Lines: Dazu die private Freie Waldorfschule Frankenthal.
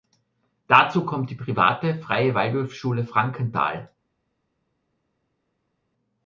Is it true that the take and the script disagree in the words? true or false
true